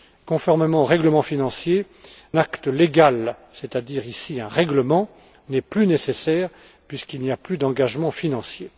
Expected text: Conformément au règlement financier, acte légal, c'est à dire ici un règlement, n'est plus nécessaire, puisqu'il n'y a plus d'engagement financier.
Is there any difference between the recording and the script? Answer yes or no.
no